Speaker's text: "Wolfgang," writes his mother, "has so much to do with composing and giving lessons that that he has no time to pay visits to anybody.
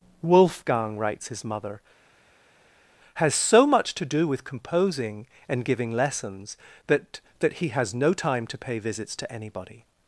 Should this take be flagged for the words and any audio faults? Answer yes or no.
no